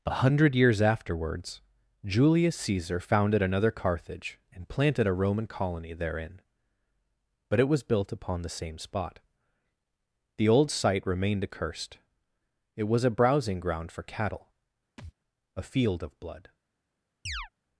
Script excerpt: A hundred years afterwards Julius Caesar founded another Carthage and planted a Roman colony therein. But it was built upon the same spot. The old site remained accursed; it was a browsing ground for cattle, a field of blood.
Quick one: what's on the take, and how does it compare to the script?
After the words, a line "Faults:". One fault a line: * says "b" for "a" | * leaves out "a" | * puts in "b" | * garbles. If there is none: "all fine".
A hundred years afterwards Julius Caesar founded another Carthage and planted a Roman colony therein. But it was built upon the same spot. The old site remained accursed; it was a browsing ground for cattle, a field of blood.
Faults:
all fine